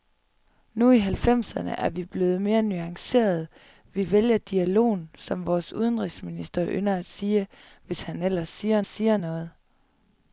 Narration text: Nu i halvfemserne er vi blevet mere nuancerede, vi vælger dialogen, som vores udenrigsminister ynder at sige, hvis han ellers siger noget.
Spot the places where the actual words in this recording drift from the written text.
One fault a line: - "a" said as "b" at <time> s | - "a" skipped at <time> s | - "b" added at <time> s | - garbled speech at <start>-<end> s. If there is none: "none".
- "siger" added at 8.9 s